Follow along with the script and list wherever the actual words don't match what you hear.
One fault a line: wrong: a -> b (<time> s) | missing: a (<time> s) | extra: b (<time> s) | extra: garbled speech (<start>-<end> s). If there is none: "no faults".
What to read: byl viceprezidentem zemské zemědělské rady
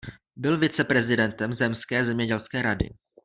no faults